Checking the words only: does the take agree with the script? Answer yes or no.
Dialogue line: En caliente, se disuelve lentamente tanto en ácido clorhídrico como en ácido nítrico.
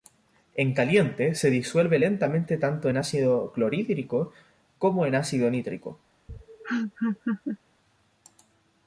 yes